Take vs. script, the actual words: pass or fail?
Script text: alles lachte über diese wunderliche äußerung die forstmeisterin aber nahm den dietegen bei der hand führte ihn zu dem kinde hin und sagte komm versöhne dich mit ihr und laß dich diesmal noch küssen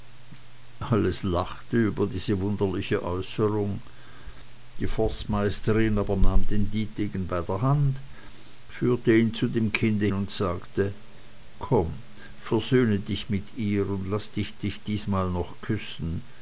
fail